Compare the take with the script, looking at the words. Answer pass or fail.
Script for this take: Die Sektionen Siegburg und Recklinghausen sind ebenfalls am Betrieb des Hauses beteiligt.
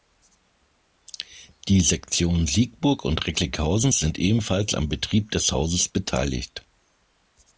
pass